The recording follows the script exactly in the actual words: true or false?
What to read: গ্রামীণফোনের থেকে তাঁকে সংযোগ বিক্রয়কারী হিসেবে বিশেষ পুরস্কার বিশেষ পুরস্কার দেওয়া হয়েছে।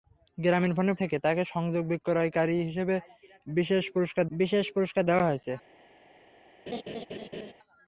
true